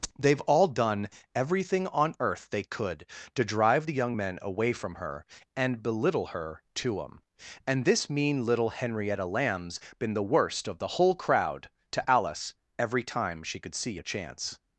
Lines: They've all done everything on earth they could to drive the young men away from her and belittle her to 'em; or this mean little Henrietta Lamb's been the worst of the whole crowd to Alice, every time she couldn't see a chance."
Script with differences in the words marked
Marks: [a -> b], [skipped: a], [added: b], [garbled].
They've all done everything on earth they could to drive the young men away from her and belittle her to 'em; [or -> and] this mean little Henrietta Lamb's been the worst of the whole crowd to Alice, every time she [couldn't -> could] see a chance."